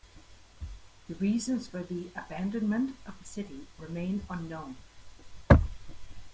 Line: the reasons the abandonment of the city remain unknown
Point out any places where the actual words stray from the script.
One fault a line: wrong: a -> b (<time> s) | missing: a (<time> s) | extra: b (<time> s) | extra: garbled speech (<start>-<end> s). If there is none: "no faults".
extra: for (1.6 s)